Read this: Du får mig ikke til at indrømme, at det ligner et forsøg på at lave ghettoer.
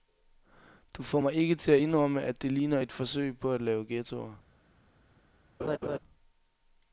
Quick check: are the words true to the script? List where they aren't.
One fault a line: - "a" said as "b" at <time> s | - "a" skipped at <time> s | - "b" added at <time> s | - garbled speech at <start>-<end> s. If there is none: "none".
none